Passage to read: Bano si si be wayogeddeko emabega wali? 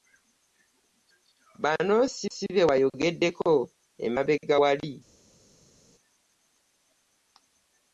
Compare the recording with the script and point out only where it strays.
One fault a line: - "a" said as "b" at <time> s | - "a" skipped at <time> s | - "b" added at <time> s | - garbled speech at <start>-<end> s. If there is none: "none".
none